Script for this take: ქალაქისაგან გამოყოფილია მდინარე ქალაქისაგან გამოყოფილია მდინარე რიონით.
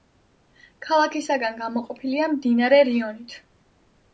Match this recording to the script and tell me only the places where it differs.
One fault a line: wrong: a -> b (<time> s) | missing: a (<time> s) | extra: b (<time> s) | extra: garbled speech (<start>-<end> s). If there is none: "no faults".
missing: ქალაქისაგან გამოყოფილია მდინარე (2.8 s)